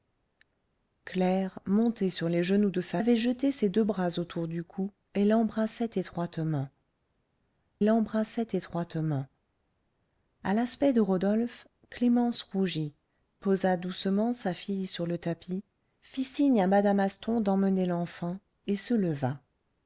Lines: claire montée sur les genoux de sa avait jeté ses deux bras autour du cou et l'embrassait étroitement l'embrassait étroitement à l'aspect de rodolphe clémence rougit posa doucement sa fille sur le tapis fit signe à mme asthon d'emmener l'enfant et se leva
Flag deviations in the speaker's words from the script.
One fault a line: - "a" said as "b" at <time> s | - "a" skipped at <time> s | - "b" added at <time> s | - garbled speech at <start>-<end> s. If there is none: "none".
none